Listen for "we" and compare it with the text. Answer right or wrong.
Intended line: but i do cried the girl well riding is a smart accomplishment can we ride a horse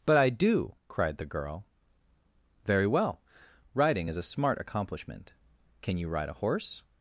wrong